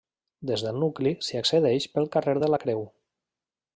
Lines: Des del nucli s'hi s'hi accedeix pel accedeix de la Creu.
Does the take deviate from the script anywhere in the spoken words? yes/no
yes